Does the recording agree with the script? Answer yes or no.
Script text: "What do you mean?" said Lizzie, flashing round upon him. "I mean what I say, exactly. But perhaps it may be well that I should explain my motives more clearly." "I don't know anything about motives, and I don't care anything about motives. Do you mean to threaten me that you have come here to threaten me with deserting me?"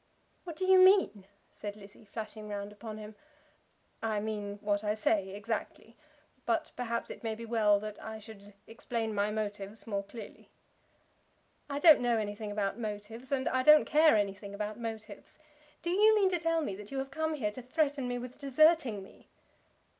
no